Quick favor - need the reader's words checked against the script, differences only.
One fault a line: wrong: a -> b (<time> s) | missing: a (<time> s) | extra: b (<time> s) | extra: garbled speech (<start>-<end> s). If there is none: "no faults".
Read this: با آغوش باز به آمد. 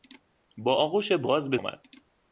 no faults